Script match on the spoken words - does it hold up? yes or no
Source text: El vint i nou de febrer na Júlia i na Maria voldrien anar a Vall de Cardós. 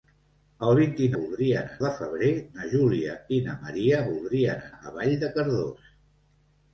no